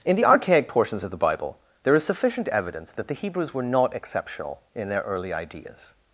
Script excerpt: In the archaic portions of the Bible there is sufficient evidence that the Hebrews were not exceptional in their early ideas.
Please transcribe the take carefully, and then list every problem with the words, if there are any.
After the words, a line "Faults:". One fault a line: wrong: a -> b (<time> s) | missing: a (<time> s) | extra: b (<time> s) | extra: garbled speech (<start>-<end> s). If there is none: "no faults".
In the archaic portions of the Bible there is sufficient evidence that the Hebrews were not exceptional in their early ideas.
Faults:
no faults